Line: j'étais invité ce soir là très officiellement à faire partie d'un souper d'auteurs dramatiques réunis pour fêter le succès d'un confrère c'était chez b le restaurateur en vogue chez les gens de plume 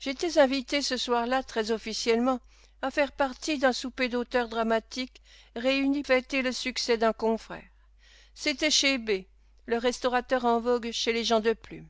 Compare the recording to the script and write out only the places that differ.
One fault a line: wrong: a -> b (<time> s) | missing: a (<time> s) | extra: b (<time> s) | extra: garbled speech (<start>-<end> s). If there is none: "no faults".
missing: pour (6.0 s)